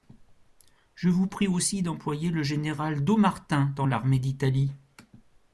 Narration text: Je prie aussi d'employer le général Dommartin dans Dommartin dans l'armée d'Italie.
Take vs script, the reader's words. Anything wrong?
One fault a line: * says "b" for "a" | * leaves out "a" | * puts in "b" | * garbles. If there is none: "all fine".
* puts in "vous"
* leaves out "Dommartin dans"